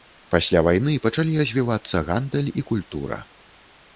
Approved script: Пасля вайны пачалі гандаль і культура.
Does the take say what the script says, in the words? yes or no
no